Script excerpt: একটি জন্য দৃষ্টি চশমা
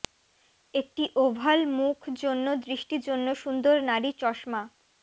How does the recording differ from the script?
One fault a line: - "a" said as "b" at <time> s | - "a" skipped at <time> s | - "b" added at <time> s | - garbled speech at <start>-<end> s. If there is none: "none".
- "ওভাল মুখ" added at 1.2 s
- "জন্য সুন্দর নারী" added at 3.1 s